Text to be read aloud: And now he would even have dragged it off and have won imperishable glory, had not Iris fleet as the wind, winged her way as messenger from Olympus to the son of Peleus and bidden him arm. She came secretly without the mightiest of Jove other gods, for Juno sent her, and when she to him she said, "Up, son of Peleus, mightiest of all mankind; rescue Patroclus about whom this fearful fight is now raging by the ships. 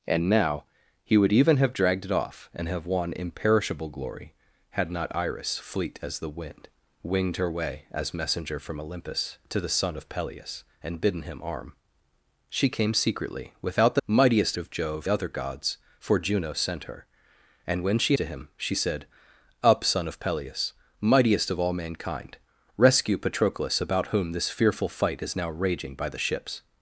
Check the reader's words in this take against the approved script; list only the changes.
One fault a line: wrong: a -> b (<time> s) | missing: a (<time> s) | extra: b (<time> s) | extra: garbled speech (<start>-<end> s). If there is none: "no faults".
no faults